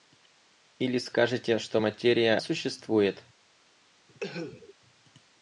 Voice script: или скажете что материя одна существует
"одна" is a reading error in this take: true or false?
true